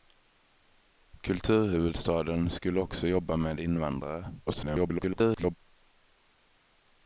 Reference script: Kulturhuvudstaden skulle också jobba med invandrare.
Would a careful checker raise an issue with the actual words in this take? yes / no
yes